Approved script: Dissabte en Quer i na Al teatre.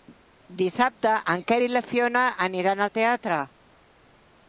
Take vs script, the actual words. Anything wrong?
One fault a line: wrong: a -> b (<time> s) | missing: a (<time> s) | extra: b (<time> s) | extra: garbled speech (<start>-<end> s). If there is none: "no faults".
extra: Fiona aniran (1.9 s)